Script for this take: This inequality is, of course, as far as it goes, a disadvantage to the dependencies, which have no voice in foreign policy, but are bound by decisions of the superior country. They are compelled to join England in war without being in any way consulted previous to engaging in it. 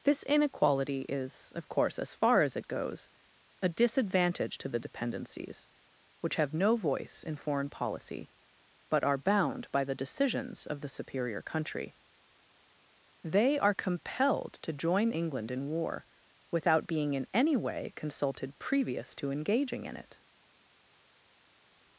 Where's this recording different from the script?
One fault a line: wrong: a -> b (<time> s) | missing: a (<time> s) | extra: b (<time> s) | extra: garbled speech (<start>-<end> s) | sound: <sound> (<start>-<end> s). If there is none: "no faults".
extra: the (9.8 s)